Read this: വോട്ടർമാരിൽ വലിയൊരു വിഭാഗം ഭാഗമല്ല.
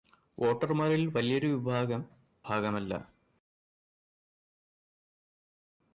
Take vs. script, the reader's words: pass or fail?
pass